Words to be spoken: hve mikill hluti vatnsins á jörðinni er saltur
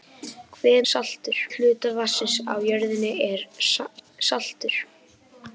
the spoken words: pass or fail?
fail